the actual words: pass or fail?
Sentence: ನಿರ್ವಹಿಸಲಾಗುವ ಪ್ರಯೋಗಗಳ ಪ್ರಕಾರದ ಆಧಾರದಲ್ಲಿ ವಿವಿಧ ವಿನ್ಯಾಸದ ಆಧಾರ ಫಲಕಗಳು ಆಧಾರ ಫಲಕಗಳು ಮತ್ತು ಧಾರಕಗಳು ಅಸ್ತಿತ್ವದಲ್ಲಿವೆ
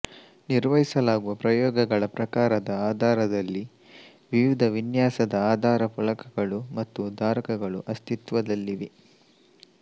fail